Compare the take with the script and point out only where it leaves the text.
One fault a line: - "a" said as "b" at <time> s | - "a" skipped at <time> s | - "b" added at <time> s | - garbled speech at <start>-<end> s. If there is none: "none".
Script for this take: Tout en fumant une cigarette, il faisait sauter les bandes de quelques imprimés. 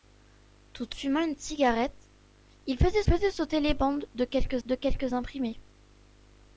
- "en" skipped at 0.9 s
- "faisait" added at 3.0 s
- "de quelques" added at 4.6 s